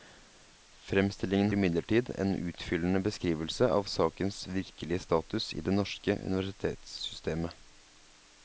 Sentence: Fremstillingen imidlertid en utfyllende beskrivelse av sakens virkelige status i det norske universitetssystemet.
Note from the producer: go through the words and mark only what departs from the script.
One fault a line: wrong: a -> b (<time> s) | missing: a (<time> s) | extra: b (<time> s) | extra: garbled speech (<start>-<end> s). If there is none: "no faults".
no faults